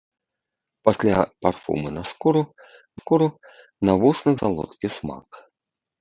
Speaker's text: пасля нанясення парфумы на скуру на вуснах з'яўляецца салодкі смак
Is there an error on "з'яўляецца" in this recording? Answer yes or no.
yes